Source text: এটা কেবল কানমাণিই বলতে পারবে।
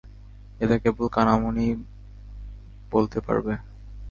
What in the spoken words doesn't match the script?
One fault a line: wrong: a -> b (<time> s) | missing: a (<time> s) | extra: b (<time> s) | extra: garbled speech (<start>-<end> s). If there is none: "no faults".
no faults